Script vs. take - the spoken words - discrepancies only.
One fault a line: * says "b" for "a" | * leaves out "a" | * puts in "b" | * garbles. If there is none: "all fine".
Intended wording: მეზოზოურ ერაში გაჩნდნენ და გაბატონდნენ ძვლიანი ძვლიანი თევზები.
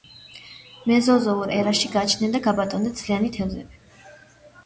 * leaves out "ძვლიანი"